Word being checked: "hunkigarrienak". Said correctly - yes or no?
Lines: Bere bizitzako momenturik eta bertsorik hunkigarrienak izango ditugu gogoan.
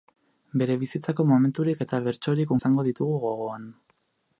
no